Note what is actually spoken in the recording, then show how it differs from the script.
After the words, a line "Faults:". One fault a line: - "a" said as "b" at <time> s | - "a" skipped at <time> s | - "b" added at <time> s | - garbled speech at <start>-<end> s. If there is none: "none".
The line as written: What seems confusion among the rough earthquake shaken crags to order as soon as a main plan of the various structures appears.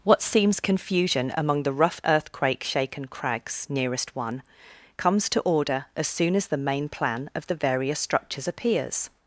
What seems confusion among the rough earthquake shaken crags nearest one comes to order as soon as the main plan of the various structures appears.
Faults:
- "nearest one comes" added at 3.7 s
- "a" said as "the" at 6.5 s